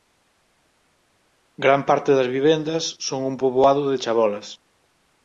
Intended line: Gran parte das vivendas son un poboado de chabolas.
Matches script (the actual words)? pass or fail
pass